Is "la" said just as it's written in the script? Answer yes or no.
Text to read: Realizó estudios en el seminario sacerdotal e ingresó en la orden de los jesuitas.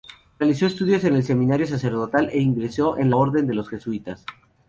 no